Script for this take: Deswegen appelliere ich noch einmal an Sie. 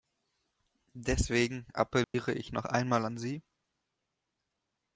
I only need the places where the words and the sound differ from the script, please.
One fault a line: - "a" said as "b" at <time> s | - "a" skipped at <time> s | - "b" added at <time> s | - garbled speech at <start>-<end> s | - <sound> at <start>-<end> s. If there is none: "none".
- dropout at 2.0-2.1 s